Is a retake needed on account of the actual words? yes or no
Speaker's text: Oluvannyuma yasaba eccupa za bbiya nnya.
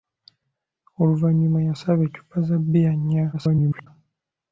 yes